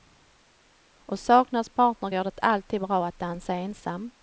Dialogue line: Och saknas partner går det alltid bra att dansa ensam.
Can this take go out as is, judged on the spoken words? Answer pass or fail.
pass